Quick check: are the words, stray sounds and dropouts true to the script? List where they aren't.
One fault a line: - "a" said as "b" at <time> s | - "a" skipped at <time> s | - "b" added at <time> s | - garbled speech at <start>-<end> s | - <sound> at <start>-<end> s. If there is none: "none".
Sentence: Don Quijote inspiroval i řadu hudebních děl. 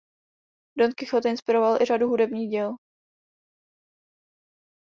none